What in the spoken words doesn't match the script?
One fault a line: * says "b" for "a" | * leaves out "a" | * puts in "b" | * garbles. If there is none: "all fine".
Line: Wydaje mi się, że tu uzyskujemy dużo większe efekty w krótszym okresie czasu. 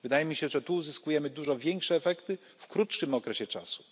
all fine